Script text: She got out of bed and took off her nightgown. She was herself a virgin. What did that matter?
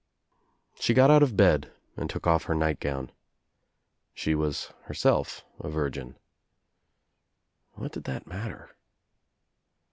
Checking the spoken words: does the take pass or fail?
pass